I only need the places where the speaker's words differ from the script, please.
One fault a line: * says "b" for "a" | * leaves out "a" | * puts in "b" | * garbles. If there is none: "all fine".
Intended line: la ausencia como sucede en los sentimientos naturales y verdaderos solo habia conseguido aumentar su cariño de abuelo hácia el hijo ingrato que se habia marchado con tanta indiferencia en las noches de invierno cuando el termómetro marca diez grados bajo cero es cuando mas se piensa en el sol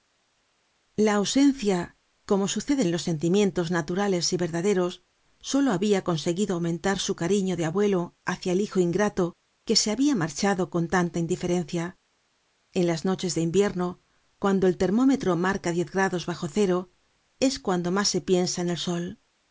all fine